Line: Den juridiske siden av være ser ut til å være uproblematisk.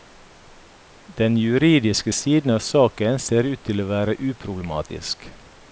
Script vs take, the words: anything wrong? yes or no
yes